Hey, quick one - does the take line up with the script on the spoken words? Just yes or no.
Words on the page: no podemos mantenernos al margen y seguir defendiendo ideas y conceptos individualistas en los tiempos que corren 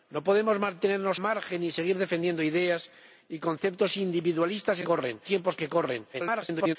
no